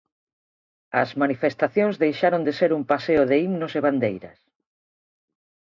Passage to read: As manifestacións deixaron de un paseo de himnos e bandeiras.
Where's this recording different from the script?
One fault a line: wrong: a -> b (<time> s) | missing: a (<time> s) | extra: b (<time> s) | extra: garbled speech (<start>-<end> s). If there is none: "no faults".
extra: ser (2.6 s)